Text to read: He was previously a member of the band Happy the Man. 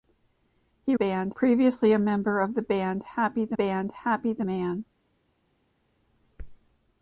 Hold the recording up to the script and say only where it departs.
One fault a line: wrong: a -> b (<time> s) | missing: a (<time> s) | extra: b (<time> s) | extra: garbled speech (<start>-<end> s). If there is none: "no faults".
wrong: was -> band (0.9 s)
extra: band Happy the (3.5 s)